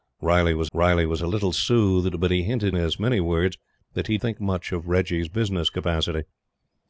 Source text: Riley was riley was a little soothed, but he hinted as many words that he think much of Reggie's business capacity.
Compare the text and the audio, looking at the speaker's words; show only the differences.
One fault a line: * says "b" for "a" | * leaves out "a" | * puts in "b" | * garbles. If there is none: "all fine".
all fine